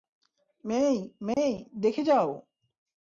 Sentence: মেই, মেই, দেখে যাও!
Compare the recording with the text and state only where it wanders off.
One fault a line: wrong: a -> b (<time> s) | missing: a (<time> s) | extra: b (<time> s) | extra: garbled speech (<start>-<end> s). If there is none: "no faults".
no faults